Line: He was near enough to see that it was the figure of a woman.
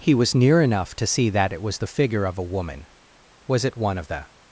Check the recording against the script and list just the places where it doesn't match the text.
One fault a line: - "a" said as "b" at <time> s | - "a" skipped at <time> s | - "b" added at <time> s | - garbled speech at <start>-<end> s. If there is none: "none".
- "Was it one of the" added at 3.5 s